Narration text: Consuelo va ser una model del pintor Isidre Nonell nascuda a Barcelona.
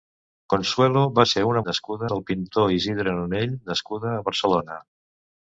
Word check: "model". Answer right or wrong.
wrong